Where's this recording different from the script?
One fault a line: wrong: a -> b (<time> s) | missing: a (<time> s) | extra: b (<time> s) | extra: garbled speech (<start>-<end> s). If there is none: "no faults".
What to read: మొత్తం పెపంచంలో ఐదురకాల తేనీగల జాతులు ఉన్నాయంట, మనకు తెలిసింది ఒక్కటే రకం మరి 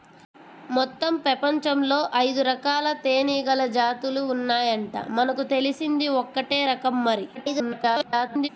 extra: garbled speech (7.3-8.5 s)